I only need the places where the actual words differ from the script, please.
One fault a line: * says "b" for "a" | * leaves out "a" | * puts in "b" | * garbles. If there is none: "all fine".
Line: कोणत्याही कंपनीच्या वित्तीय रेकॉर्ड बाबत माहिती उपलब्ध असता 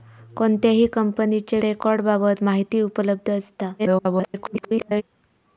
* leaves out "वित्तीय"
* garbles